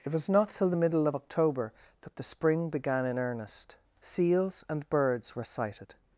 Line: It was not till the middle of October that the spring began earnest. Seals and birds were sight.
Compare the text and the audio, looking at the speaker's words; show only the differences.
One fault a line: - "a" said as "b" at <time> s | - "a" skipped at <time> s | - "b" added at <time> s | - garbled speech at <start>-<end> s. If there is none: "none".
- "in" added at 3.1 s
- "sight" said as "sighted" at 5.4 s